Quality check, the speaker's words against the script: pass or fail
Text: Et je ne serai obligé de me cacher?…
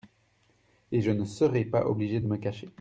fail